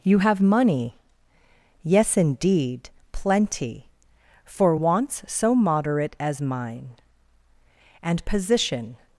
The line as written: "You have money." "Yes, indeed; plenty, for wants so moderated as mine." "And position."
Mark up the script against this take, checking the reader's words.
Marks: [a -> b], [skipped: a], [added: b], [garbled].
"You have money." "Yes, indeed; plenty, for wants so [moderated -> moderate] as mine." "And position."